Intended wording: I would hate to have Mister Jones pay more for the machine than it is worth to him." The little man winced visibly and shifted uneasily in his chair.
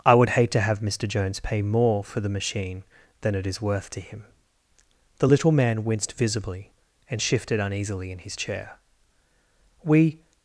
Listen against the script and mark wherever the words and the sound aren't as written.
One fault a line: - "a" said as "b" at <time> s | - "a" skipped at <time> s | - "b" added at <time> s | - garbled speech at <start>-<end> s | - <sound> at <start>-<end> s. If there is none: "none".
- "We" added at 9.8 s